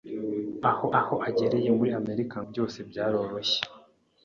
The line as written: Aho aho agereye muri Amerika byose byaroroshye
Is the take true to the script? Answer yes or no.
yes